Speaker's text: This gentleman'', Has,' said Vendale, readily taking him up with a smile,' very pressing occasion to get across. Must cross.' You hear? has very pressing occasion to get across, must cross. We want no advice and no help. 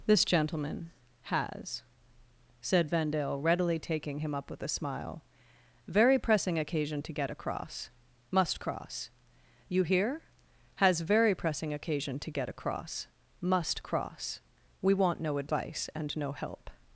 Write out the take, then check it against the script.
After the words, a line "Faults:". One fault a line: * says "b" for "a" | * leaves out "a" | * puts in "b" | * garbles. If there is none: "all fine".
This gentleman'', Has,' said Vendale, readily taking him up with a smile,' very pressing occasion to get across. Must cross.' You hear? has very pressing occasion to get across, must cross. We want no advice and no help.
Faults:
all fine